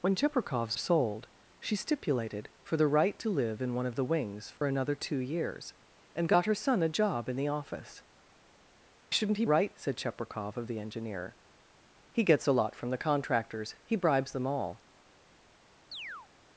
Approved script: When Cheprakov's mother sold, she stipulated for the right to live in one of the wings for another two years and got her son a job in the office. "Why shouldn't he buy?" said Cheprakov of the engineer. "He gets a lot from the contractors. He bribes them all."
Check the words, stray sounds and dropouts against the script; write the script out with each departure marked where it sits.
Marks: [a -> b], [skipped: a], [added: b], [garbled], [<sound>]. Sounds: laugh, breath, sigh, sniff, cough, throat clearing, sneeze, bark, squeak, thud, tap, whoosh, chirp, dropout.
When Cheprakov's [skipped: mother] sold, she stipulated for the right to live in one of the wings for [dropout] another two years and got her son a job in the office. [skipped: "Why] shouldn't he [buy?" -> right] said Cheprakov of the engineer. "He gets a lot from the contractors. He bribes them all." [chirp]